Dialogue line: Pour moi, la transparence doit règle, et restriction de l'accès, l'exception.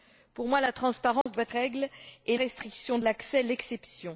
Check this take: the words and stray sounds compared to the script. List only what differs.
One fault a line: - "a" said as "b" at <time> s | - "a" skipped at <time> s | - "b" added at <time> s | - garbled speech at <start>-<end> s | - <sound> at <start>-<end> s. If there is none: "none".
- dropout at 1.2-1.3 s